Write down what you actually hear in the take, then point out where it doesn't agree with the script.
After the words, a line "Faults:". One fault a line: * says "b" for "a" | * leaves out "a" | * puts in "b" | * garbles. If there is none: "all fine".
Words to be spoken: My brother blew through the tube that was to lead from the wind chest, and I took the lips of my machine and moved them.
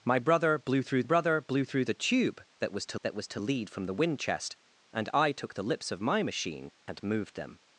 My brother blew through brother blew through the tube that was to that was to lead from the wind chest, and I took the lips of my machine and moved them.
Faults:
* puts in "brother blew through"
* puts in "that was to"